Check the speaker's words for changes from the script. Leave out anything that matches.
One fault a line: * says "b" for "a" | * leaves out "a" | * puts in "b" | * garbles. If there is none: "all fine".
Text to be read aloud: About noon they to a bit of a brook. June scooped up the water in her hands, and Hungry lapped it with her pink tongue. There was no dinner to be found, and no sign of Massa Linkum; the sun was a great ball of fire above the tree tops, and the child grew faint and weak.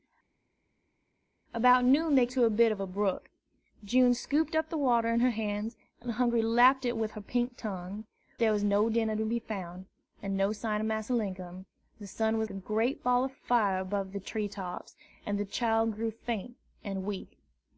all fine